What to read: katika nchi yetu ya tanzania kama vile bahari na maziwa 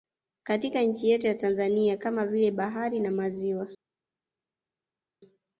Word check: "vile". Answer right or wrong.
right